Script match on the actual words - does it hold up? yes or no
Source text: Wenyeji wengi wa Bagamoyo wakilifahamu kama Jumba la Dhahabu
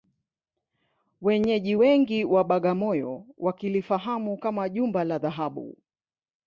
yes